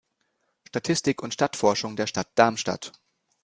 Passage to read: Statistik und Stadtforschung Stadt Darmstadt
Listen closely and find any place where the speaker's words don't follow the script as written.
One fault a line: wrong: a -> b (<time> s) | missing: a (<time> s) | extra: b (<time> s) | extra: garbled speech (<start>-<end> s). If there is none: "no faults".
extra: der (1.9 s)